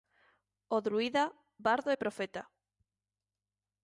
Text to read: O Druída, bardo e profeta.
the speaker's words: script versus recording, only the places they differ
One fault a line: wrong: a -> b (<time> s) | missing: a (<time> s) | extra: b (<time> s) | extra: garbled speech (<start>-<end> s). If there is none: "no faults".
no faults